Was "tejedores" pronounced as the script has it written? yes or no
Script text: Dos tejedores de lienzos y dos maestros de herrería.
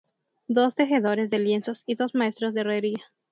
yes